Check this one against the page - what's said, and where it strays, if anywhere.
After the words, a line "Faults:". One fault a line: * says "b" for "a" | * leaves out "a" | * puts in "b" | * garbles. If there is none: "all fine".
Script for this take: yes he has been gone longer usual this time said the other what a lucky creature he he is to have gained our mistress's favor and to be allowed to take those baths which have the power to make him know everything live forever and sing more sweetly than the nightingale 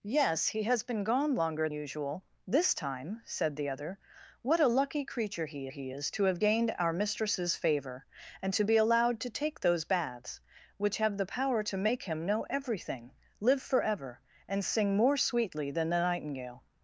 yes he has been gone longer usual this time said the other what a lucky creature he he is to have gained our mistress's favor and to be allowed to take those baths which have the power to make him know everything live forever and sing more sweetly than the nightingale
Faults:
all fine